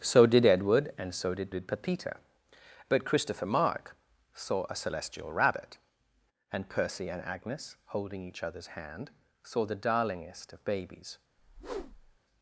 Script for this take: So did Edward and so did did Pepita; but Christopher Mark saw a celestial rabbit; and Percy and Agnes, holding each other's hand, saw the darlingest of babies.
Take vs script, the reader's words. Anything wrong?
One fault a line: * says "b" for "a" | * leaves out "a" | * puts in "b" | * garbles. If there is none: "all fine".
all fine